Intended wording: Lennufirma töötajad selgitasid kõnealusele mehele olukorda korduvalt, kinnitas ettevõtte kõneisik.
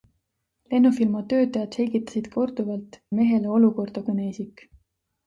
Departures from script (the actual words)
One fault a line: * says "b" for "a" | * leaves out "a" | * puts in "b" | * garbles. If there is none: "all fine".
* says "korduvalt" for "kõnealusele"
* leaves out "korduvalt kinnitas ettevõtte"